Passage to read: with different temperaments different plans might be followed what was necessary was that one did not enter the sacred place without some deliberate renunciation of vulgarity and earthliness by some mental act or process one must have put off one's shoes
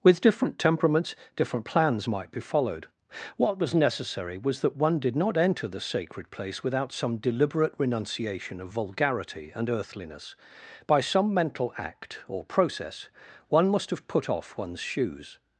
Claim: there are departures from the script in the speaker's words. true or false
false